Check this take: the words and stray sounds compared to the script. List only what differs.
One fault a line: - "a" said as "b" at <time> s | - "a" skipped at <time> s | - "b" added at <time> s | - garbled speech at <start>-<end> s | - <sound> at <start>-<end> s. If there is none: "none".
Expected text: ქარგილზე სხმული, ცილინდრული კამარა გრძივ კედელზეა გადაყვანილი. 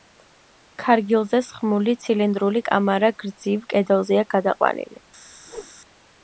- whoosh at 5.5-5.7 s